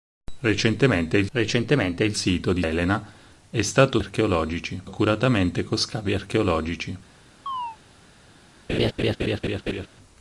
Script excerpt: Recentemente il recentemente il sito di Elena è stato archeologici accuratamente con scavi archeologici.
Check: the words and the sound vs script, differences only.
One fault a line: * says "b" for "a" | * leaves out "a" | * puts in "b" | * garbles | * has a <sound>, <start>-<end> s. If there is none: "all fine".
* has a chirp, 7.5-7.8 s
* has a laugh, 8.7-9.9 s